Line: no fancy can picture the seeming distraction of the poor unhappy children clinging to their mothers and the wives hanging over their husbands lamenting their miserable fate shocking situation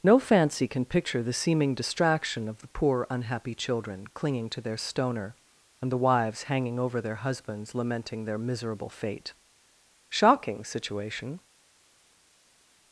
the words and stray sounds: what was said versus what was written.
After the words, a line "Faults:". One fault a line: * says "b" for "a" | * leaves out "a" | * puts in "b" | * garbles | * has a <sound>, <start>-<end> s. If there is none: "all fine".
no fancy can picture the seeming distraction of the poor unhappy children clinging to their stoner and the wives hanging over their husbands lamenting their miserable fate shocking situation
Faults:
* says "stoner" for "mothers"